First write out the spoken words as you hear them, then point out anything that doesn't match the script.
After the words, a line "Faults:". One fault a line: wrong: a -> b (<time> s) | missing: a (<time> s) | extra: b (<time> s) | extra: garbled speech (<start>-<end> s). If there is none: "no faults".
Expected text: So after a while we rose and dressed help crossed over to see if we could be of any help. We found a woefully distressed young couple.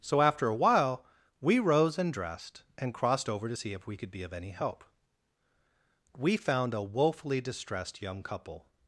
So after a while we rose and dressed and crossed over to see if we could be of any help. We found a woefully distressed young couple.
Faults:
wrong: help -> and (2.8 s)